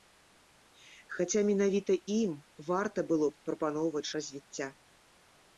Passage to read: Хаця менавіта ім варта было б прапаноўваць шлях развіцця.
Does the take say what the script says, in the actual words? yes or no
no